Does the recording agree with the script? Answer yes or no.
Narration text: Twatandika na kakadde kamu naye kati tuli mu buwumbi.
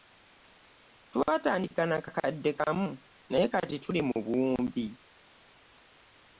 yes